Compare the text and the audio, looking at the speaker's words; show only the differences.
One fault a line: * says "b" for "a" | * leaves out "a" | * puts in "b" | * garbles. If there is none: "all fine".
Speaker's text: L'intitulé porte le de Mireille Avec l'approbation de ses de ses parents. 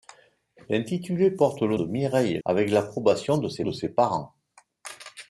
all fine